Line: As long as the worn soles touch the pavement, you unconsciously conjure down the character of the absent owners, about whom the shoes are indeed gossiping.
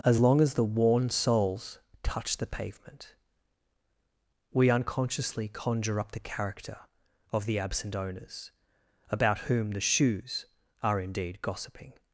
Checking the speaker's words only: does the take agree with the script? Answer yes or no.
no